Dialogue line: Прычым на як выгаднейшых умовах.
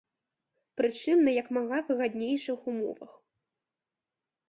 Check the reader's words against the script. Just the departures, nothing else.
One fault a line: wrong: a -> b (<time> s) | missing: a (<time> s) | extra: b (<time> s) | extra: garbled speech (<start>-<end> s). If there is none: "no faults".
extra: мага (1.6 s)